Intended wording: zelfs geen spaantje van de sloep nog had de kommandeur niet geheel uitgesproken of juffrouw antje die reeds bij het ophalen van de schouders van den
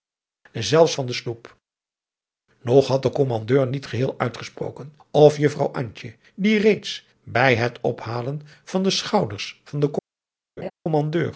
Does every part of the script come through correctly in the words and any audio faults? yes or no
no